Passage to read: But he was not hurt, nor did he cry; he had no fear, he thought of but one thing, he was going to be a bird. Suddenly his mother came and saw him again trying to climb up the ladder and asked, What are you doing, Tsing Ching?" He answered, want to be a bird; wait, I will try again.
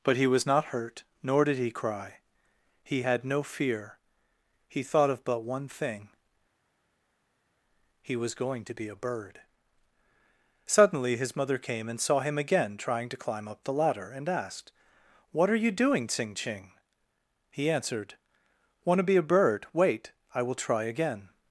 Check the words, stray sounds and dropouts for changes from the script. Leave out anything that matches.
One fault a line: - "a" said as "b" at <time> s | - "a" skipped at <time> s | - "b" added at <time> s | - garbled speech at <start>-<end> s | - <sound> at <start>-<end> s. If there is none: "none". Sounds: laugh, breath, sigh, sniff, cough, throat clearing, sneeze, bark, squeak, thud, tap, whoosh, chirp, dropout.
none